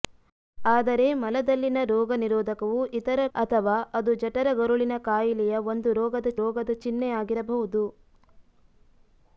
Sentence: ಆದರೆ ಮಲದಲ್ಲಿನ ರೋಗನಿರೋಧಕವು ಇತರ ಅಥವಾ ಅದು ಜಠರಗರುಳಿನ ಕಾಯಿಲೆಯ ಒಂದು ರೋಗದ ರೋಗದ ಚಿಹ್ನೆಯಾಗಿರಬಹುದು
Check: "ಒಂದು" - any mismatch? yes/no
no